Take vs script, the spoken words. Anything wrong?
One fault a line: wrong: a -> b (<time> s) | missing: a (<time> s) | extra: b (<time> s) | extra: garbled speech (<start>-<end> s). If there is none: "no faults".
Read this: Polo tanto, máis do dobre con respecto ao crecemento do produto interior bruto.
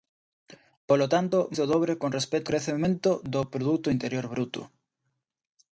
missing: máis (1.4 s)
missing: ao (2.5 s)